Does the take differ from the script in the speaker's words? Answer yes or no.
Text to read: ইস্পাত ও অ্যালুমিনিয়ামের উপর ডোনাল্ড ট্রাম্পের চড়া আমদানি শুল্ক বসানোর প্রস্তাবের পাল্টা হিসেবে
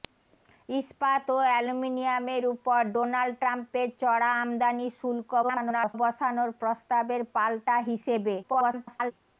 yes